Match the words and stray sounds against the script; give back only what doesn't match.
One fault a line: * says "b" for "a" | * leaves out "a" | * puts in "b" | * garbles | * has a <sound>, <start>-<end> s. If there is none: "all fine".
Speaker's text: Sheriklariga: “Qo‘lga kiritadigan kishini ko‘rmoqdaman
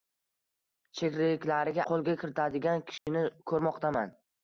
* has a dropout, 3.0-3.1 s